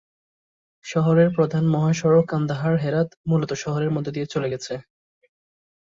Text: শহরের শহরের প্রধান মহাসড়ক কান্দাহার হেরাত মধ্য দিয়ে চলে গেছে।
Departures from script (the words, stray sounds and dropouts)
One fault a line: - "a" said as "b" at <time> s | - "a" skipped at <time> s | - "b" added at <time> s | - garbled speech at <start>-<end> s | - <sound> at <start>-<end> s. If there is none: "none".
- "শহরের" skipped at 1.3 s
- "মূলত শহরের" added at 3.3 s